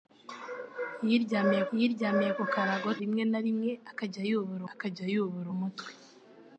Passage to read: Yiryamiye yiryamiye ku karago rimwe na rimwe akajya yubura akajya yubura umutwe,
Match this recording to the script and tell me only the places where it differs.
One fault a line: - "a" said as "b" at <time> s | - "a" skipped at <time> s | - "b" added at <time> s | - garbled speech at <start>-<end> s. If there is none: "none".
none